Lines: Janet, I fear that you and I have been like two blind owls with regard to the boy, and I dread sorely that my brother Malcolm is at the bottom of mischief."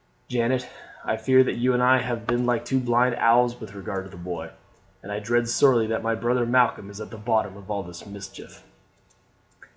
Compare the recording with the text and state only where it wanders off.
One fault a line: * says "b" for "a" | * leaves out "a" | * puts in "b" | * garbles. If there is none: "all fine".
* puts in "all this"